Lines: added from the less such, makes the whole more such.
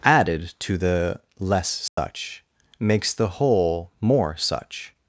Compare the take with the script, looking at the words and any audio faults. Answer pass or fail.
fail